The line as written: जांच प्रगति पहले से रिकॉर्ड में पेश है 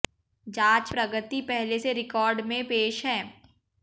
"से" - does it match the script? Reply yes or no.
yes